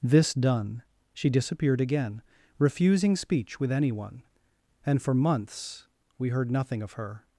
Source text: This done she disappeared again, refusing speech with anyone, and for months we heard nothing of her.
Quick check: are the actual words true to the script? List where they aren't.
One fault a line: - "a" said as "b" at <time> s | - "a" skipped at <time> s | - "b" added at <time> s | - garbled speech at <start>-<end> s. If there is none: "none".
none